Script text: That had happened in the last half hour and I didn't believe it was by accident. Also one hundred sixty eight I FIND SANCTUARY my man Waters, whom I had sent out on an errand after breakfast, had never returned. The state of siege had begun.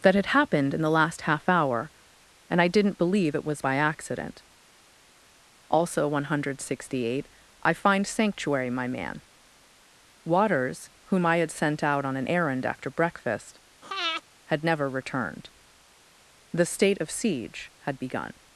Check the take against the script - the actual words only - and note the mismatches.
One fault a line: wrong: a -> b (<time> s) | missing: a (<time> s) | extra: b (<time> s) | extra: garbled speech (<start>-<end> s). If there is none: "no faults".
no faults